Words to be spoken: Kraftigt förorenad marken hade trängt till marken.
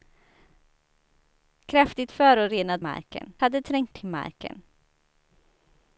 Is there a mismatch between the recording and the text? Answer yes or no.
no